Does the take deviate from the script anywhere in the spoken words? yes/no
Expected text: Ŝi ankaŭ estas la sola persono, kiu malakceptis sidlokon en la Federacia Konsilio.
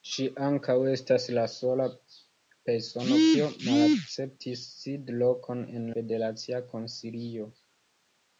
yes